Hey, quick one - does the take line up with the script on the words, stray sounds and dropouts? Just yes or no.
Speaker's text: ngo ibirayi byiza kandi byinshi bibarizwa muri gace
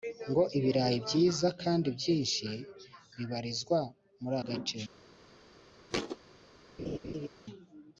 no